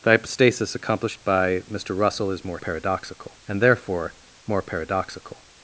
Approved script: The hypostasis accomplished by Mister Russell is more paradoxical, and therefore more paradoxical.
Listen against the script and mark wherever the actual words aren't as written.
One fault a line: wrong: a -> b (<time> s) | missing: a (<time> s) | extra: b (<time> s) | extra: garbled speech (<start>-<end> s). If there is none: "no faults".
no faults